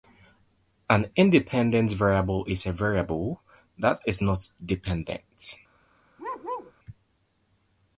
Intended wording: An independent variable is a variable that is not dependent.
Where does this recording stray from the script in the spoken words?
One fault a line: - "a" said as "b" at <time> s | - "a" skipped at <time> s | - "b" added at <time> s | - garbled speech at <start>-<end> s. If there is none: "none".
none